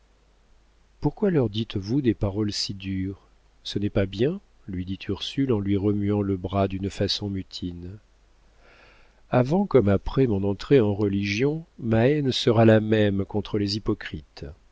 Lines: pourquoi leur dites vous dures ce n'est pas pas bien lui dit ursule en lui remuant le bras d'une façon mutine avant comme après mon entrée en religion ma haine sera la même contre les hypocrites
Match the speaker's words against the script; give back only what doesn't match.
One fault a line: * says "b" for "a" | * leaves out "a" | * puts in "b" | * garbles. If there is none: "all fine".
* puts in "des paroles si"
* leaves out "pas"